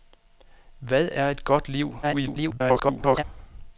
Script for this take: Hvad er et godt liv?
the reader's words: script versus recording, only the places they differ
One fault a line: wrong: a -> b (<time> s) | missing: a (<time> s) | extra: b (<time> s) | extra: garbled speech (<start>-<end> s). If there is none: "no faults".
extra: garbled speech (2.0-3.2 s)